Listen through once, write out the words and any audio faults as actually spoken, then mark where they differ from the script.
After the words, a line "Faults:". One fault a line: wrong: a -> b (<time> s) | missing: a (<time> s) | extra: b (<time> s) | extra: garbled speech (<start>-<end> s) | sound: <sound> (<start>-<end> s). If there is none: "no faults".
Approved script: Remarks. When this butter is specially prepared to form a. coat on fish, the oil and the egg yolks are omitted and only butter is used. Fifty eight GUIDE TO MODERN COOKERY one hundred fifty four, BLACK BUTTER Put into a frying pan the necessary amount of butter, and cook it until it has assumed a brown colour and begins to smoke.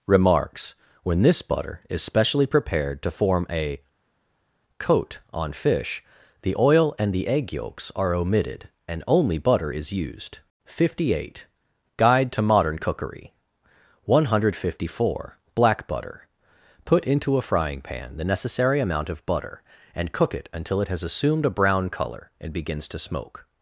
Remarks. When this butter is specially prepared to form a. coat on fish, the oil and the egg yolks are omitted and only butter is used. Fifty eight GUIDE TO MODERN COOKERY one hundred fifty four, BLACK BUTTER Put into a frying pan the necessary amount of butter, and cook it until it has assumed a brown colour and begins to smoke.
Faults:
no faults